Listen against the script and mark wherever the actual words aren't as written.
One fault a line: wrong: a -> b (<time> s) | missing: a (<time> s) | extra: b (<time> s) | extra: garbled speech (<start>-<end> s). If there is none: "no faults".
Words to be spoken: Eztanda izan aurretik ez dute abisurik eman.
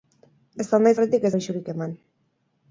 missing: izan (0.9 s)
missing: dute (1.3 s)